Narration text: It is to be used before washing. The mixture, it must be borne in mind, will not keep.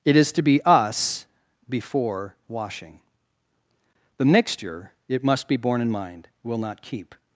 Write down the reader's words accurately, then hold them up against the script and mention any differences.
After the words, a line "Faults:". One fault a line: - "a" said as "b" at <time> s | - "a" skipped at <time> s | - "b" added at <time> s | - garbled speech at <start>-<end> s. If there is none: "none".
It is to be us before washing. The mixture, it must be borne in mind, will not keep.
Faults:
- "used" said as "us" at 0.6 s